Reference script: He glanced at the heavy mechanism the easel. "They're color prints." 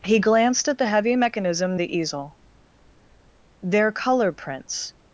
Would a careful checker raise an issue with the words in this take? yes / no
no